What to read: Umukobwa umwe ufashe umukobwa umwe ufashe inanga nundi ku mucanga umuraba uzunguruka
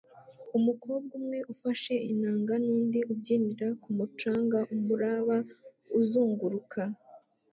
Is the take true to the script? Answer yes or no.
no